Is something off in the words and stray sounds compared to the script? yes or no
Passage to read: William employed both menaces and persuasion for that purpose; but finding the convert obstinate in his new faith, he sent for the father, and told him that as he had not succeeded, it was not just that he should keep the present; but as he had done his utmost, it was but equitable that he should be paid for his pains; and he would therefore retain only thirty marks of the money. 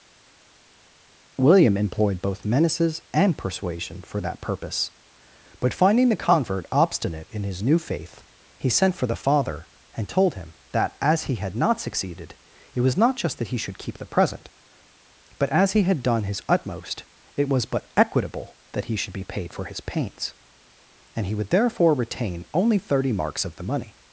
no